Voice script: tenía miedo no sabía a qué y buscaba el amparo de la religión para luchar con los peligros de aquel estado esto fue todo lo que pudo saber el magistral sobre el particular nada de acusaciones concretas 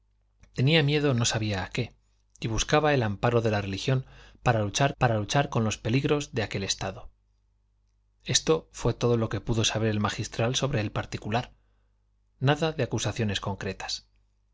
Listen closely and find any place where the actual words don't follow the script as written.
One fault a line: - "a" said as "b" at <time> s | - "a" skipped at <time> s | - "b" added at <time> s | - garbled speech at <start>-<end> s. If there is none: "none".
- "para luchar" added at 5.0 s